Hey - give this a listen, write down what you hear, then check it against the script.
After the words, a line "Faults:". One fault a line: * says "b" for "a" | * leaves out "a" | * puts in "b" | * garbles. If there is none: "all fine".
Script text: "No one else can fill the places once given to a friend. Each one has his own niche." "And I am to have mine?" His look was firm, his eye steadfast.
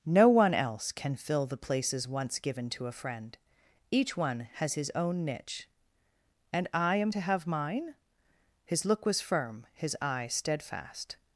"No one else can fill the places once given to a friend. Each one has his own niche." "And I am to have mine?" His look was firm, his eye steadfast.
Faults:
all fine